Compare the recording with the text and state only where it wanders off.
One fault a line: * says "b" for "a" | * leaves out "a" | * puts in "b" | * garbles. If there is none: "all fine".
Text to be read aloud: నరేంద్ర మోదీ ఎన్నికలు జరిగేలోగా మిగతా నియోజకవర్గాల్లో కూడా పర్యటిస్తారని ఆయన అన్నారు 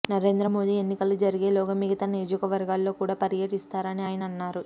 all fine